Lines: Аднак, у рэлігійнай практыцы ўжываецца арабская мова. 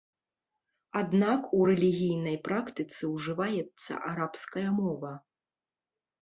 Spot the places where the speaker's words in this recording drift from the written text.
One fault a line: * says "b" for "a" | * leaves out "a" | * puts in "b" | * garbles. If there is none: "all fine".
all fine